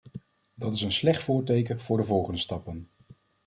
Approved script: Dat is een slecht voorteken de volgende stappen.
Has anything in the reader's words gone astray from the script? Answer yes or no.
yes